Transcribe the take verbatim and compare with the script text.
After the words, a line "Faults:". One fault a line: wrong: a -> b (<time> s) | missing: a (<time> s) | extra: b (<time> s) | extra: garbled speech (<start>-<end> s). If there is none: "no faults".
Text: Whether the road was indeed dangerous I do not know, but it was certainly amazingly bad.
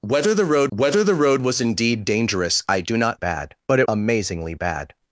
Whether the road whether the road was indeed dangerous I do not bad, but it amazingly bad.
Faults:
extra: whether the road (0.7 s)
wrong: know -> bad (3.2 s)
missing: was certainly (3.9 s)